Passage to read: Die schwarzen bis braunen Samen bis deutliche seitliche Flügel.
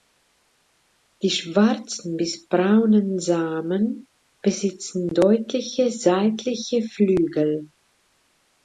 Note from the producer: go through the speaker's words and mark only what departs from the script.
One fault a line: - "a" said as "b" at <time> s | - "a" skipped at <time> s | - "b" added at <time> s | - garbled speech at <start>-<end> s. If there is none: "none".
- "bis" said as "besitzen" at 4.4 s